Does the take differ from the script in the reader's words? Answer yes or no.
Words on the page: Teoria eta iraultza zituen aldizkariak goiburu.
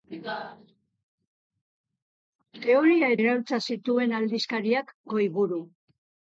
yes